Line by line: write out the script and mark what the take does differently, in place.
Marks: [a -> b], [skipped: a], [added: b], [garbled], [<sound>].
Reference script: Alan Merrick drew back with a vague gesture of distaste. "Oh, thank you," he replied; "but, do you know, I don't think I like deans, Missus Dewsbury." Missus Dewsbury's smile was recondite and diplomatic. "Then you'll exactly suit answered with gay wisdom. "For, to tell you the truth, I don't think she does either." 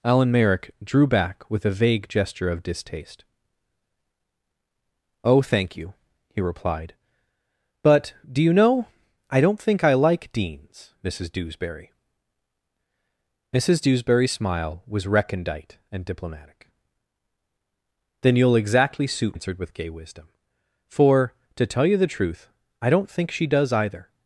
Alan Merrick drew back with a vague gesture of distaste. "Oh, thank you," he replied; "but, do you know, I don't think I like deans, Missus Dewsbury." Missus Dewsbury's smile was recondite and diplomatic. "Then you'll exactly suit answered with gay wisdom. "For, to tell you the truth, I don't think she does either."